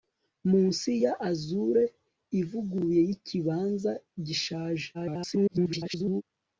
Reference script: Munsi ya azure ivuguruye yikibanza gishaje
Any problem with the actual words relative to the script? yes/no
yes